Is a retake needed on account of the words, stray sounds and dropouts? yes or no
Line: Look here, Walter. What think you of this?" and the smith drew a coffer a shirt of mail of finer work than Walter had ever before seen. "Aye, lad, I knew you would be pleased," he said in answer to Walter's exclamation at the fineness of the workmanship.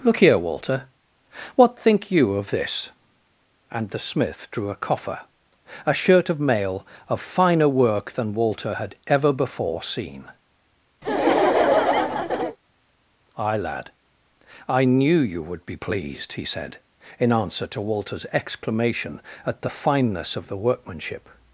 yes